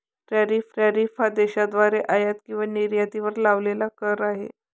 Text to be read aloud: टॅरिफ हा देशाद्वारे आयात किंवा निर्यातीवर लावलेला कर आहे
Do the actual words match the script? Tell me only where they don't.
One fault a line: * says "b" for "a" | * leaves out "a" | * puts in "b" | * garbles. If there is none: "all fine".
* puts in "टॅरिफ"